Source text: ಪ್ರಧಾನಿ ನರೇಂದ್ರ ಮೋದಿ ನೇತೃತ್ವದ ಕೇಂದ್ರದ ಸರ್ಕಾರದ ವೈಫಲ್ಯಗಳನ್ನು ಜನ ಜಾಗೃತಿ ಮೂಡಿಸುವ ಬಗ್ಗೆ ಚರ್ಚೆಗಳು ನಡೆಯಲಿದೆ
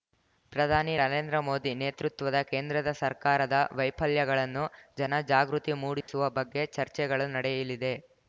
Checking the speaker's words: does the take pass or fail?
pass